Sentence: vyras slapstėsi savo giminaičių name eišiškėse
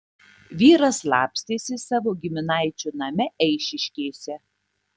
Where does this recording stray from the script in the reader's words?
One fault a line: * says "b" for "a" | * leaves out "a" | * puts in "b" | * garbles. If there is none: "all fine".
all fine